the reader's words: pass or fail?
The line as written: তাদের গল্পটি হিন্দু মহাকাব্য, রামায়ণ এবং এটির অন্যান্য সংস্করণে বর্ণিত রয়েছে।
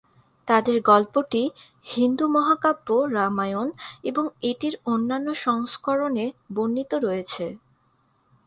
pass